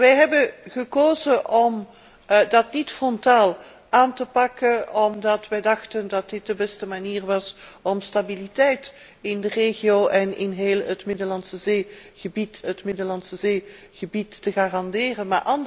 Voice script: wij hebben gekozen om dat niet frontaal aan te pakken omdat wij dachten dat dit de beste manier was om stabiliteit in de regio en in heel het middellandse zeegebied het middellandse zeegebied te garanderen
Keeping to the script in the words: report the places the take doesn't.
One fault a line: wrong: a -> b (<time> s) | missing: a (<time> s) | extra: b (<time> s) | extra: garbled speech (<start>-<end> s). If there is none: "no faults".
no faults